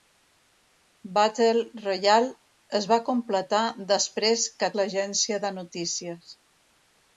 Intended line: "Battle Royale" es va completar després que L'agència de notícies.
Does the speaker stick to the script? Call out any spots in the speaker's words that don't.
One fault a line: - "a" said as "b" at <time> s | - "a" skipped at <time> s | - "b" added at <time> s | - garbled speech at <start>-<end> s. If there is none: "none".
none